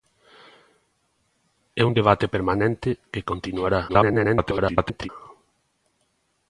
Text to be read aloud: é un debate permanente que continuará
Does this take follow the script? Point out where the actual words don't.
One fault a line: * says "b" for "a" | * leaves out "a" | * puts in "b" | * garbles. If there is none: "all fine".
* garbles